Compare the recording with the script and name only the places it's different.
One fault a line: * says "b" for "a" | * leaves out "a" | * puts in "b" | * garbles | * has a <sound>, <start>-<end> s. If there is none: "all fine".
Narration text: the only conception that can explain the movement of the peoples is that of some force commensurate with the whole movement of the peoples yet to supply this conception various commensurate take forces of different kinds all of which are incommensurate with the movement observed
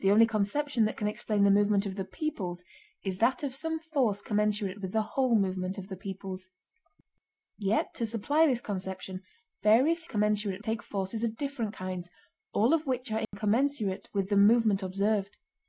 * has a dropout, 13.2-13.3 s